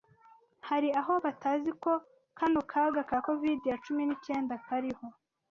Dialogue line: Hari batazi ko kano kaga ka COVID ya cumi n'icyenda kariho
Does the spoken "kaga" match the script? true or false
true